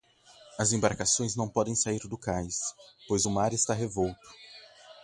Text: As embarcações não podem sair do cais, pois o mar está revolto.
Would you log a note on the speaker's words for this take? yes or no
no